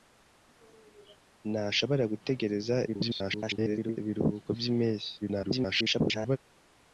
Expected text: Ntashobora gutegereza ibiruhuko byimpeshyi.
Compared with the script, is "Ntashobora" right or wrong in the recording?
right